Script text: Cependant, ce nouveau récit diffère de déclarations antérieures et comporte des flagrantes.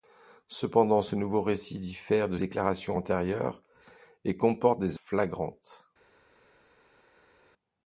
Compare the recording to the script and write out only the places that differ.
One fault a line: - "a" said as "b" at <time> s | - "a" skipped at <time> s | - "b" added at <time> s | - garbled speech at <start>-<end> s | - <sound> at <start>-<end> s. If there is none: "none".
none